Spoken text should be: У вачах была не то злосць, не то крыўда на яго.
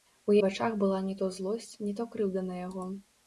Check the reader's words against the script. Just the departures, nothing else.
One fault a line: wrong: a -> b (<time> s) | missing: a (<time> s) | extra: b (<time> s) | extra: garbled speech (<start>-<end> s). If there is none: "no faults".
no faults